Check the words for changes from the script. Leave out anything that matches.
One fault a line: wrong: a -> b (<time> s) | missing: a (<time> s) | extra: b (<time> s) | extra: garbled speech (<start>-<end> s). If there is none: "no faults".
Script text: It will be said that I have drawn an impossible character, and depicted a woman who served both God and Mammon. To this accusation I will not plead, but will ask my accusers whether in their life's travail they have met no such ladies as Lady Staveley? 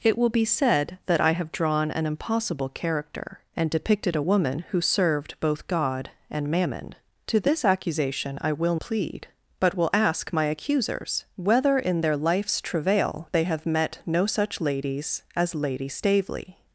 missing: not (8.8 s)